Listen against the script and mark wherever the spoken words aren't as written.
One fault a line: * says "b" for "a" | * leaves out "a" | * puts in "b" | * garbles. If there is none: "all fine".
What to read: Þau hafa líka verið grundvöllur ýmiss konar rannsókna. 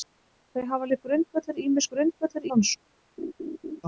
* leaves out "líka"
* says "grundvöllur" for "konar"